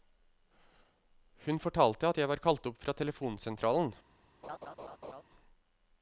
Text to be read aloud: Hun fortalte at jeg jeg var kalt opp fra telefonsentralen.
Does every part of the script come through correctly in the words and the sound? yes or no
no